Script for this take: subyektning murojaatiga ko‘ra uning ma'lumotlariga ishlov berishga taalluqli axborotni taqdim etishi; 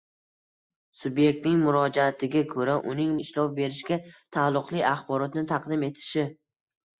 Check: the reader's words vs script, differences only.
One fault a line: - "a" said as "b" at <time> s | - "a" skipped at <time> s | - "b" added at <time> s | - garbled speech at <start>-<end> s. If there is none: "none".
- "ma'lumotlariga" skipped at 3.1 s